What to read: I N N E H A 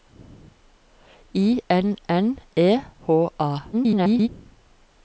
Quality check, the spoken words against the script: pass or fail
fail